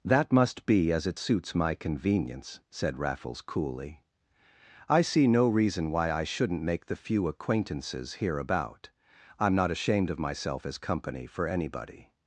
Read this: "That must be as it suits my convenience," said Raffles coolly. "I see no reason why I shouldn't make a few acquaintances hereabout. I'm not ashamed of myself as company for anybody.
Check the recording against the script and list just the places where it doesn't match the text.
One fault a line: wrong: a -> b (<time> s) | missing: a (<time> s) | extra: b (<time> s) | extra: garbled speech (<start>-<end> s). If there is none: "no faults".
wrong: a -> the (6.9 s)